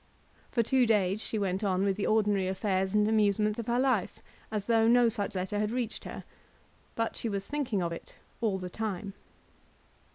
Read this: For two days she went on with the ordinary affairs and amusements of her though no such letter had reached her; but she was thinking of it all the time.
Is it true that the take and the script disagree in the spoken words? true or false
true